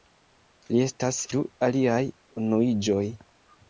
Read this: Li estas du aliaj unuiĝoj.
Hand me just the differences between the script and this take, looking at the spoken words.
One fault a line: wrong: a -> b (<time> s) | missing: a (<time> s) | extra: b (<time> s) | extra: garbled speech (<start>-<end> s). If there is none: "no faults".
no faults